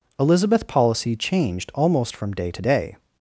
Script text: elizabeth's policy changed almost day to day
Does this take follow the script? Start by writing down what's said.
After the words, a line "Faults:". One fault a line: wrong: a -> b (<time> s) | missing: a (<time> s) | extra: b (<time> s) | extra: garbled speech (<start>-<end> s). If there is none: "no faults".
elizabeth's policy changed almost from day to day
Faults:
extra: from (2.1 s)